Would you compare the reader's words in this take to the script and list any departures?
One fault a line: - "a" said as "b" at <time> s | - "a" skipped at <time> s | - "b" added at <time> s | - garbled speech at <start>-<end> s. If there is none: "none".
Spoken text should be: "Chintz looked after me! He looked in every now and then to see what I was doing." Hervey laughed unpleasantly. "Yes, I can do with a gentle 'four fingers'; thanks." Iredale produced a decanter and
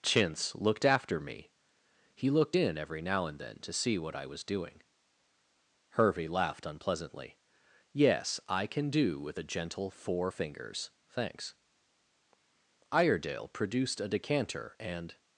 none